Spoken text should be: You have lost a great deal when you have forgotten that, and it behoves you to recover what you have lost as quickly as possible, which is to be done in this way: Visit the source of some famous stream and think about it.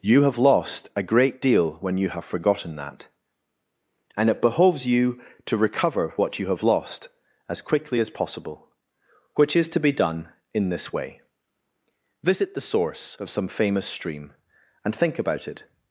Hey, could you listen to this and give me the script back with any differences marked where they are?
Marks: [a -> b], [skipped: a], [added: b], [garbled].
You have lost a great deal when you have forgotten that, and it behoves you to recover what you have lost as quickly as possible, which is to be done in this way: Visit the source of some famous stream and think about it.